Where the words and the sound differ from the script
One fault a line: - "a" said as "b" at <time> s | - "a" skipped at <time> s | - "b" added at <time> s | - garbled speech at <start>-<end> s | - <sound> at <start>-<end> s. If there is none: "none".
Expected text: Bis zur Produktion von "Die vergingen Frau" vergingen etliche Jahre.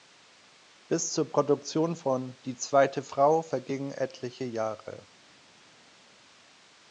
- "vergingen" said as "zweite" at 2.5 s